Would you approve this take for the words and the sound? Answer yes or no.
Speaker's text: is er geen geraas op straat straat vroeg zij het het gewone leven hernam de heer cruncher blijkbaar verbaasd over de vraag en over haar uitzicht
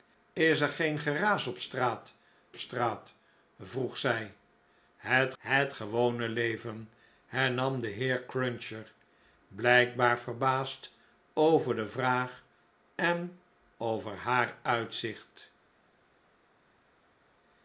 yes